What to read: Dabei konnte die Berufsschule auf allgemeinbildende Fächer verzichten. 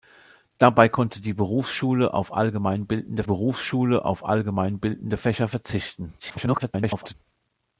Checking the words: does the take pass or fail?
fail